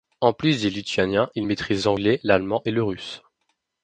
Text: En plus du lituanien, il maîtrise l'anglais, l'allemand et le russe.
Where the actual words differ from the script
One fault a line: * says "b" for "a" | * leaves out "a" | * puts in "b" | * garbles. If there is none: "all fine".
all fine